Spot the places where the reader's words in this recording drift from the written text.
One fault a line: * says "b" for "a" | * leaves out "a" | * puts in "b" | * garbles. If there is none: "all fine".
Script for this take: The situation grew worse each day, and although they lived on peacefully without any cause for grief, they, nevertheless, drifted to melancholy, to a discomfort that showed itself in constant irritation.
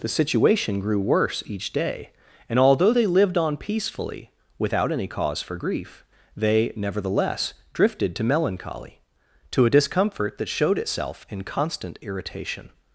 all fine